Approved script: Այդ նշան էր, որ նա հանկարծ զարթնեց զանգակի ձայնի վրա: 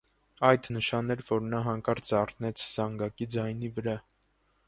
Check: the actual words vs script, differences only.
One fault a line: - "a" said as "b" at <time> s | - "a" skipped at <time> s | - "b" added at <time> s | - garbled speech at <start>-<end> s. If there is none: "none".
none